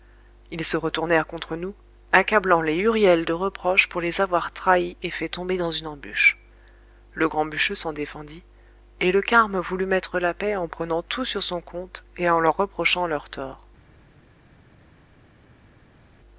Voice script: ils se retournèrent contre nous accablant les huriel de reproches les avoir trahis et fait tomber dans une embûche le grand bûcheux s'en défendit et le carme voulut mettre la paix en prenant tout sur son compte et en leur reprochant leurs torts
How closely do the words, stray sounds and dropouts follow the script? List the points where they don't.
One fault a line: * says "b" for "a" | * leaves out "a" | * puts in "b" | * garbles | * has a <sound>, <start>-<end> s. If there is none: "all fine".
* puts in "pour"